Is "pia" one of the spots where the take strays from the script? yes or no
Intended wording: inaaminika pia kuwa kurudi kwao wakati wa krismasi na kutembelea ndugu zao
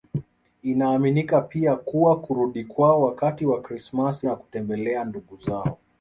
no